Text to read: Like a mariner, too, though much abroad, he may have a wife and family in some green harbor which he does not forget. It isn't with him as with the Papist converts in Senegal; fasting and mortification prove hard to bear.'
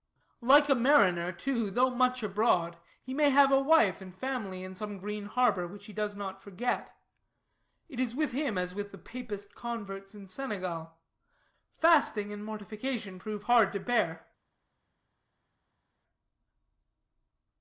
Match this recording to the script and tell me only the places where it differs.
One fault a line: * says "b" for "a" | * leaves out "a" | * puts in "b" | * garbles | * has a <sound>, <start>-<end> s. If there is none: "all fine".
* says "is" for "isn't"